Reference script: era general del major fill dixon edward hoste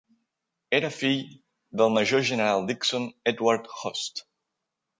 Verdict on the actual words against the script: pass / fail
fail